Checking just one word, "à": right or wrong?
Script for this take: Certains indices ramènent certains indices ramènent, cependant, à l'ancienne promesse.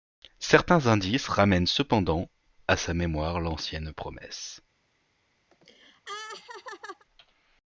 wrong